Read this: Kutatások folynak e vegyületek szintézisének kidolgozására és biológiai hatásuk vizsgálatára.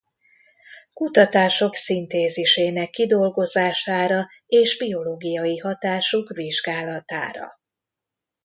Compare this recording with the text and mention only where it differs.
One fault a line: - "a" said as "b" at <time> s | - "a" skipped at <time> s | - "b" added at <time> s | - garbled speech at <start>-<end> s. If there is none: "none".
- "folynak e vegyületek" skipped at 1.8 s